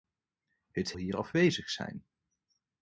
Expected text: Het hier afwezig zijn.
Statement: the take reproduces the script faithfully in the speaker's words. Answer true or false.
true